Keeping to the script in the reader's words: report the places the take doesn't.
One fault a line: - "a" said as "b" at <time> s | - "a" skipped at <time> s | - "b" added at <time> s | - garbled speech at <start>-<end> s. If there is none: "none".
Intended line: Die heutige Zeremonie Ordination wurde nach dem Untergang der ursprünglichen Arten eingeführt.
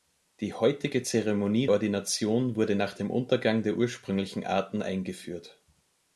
none